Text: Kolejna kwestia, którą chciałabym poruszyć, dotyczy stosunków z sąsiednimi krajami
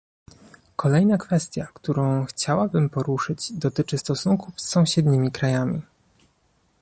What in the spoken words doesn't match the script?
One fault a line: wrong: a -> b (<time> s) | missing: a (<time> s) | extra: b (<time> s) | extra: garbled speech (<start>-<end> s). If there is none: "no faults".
no faults